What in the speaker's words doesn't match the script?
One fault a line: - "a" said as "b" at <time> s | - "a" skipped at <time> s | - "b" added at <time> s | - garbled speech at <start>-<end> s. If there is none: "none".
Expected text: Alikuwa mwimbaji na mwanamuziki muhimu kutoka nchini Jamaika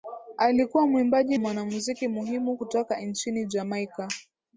- "na" skipped at 1.4 s